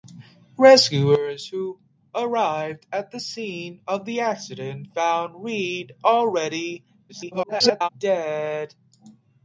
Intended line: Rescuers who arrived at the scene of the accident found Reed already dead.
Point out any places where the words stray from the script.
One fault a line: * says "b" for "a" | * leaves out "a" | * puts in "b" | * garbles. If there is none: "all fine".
* garbles